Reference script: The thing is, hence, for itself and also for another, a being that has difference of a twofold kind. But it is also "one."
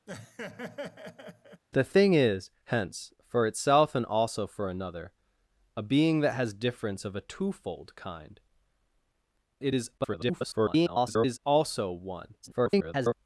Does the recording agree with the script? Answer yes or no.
no